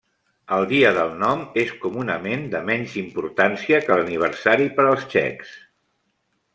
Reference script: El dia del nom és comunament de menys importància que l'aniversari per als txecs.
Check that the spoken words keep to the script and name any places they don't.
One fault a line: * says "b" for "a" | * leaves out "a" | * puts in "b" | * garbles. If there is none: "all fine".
all fine